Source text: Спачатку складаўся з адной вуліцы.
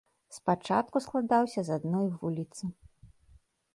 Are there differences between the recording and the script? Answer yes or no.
no